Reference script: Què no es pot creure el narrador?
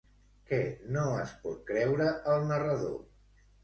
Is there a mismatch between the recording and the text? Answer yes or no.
no